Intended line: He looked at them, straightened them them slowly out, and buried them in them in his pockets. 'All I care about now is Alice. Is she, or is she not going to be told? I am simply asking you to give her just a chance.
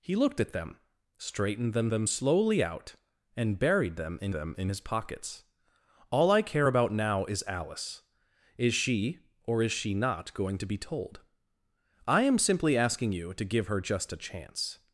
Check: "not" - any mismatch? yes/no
no